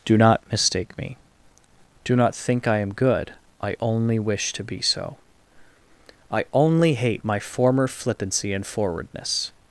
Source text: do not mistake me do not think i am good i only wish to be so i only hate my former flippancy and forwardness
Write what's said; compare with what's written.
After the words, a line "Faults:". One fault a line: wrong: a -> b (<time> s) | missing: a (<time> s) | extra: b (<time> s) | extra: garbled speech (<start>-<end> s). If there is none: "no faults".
do not mistake me do not think i am good i only wish to be so i only hate my former flippancy and forwardness
Faults:
no faults